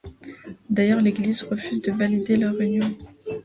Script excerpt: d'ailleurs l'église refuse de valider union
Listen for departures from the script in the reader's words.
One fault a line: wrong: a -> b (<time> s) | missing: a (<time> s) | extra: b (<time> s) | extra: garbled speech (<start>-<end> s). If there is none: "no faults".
extra: leur (2.4 s)